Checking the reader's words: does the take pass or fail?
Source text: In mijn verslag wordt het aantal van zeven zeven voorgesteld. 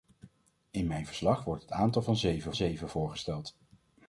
pass